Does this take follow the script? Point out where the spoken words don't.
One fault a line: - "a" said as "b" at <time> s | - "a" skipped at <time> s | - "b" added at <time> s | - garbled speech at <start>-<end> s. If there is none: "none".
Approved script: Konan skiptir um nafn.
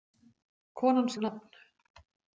- "skiptir" skipped at 1.1 s